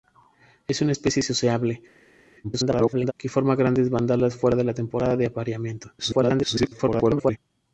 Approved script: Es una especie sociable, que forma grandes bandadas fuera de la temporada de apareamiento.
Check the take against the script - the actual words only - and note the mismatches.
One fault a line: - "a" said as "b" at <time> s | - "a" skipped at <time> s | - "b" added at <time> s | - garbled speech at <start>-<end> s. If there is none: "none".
- garbled speech at 2.4-3.1 s
- garbled speech at 6.0-7.4 s